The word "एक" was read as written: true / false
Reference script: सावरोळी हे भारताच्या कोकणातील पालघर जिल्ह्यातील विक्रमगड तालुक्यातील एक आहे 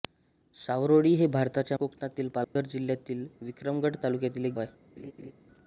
true